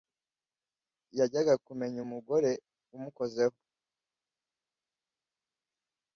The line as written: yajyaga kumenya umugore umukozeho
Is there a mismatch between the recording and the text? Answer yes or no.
no